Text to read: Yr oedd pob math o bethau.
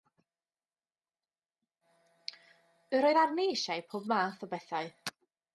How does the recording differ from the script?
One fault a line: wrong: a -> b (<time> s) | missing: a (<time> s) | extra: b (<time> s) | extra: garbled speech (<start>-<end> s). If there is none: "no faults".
extra: arni eisiau (3.2 s)